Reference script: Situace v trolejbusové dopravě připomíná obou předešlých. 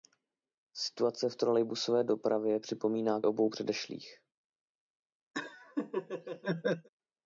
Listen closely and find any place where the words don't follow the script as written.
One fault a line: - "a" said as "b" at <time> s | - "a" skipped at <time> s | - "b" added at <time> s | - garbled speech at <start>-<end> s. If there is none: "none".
none